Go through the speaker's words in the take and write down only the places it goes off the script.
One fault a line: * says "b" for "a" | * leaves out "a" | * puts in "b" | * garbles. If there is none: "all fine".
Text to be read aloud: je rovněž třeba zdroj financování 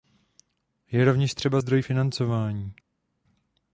all fine